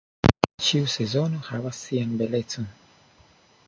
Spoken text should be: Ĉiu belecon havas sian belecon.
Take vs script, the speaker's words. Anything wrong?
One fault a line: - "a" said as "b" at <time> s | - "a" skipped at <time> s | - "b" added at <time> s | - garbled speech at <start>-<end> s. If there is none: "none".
- "belecon" said as "sezono" at 0.9 s